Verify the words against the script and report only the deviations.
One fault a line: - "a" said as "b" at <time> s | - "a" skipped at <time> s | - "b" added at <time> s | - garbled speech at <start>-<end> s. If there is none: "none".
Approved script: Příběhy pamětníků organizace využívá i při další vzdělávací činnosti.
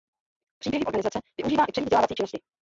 - "pamětníků" skipped at 0.8 s
- "další" skipped at 1.8 s